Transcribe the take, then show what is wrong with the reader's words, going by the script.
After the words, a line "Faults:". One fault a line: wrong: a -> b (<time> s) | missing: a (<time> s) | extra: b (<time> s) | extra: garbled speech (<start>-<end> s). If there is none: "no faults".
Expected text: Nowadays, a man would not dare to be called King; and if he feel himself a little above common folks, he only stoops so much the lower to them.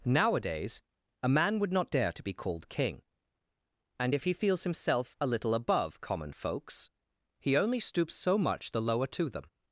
Nowadays, a man would not dare to be called King; and if he feels himself a little above common folks, he only stoops so much the lower to them.
Faults:
wrong: feel -> feels (4.3 s)